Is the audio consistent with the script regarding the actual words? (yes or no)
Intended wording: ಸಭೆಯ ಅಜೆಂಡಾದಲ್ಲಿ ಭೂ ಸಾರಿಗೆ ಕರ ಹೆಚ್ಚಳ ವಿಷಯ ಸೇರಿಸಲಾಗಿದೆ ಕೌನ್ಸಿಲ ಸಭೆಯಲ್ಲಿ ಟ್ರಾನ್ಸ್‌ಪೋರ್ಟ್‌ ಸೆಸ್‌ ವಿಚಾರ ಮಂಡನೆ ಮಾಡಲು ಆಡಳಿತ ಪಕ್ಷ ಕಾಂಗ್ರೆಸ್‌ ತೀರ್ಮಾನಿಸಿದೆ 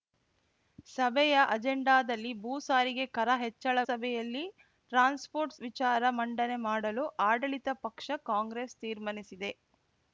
no